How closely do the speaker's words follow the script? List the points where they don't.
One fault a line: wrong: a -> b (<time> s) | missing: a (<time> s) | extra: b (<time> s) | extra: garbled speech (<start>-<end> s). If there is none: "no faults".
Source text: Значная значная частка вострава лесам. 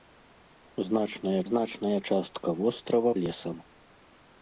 no faults